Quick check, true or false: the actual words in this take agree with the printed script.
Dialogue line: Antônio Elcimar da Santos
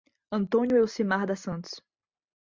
true